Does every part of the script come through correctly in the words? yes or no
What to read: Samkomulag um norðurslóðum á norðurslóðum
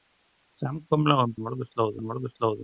yes